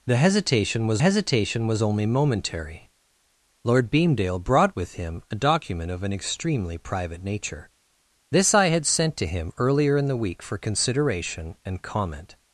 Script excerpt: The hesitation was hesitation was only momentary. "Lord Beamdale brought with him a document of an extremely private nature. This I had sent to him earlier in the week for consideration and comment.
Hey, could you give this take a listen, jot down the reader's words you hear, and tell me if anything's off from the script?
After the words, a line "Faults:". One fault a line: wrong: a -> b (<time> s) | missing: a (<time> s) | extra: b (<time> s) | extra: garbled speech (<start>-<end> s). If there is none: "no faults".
The hesitation was hesitation was only momentary. "Lord Beamdale brought with him a document of an extremely private nature. This I had sent to him earlier in the week for consideration and comment.
Faults:
no faults